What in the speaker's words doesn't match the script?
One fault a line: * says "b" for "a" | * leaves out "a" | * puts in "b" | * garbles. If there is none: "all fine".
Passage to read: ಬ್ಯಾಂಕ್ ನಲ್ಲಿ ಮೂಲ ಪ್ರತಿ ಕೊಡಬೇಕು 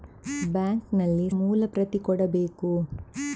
all fine